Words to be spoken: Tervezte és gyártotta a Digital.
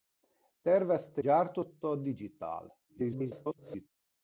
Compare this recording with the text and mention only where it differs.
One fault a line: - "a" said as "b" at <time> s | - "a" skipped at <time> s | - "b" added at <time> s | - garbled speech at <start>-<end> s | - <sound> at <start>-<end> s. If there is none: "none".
- "és" skipped at 1.2 s
- garbled speech at 2.9-3.9 s